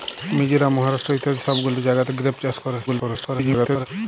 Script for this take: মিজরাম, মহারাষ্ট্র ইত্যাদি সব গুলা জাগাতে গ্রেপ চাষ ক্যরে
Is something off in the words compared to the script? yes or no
yes